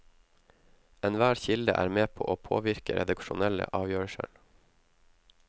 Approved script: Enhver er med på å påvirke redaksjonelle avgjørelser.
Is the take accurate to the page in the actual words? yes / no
no